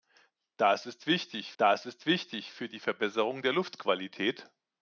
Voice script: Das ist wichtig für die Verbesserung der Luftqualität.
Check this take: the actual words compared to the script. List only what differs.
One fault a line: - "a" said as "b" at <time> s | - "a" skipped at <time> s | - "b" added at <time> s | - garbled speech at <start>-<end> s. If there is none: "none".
- "das ist wichtig" added at 1.6 s